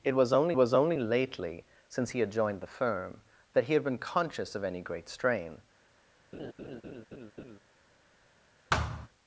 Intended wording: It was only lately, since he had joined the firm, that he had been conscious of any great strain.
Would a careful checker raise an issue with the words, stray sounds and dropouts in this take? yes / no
yes